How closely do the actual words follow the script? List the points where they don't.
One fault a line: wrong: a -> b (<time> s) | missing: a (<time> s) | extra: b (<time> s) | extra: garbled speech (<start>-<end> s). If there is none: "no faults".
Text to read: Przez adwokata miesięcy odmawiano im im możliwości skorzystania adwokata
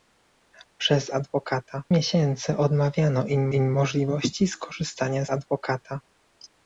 no faults